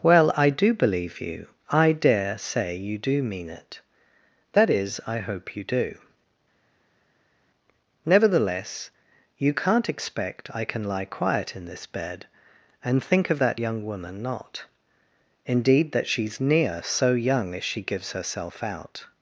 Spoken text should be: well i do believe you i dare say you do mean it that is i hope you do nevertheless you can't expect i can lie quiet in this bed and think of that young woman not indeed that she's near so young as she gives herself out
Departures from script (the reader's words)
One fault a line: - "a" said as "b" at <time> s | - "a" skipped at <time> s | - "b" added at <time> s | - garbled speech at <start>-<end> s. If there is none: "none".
none